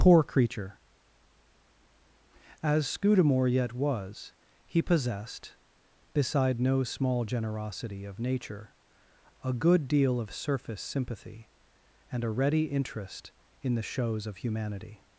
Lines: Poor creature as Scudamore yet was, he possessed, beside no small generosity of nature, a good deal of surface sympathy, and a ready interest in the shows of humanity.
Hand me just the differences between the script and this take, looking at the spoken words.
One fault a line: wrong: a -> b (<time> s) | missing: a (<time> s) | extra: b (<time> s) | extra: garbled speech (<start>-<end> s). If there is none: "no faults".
no faults